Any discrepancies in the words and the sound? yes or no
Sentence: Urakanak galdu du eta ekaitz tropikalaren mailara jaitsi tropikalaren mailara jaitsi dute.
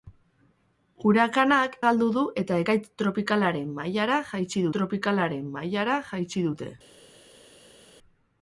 no